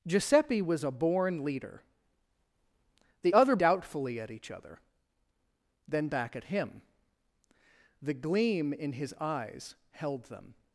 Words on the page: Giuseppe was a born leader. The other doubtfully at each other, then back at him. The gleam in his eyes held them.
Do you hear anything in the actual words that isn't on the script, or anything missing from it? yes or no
no